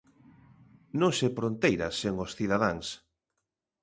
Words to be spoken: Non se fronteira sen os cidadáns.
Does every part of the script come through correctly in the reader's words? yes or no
yes